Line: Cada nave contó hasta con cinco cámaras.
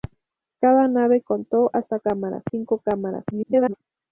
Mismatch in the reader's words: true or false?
true